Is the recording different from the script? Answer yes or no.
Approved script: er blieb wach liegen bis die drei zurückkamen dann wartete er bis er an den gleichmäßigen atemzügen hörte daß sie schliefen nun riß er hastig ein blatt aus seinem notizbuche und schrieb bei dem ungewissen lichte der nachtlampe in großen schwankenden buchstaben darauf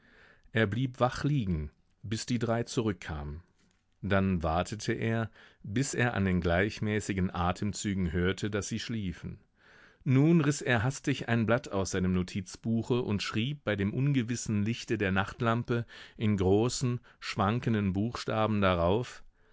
no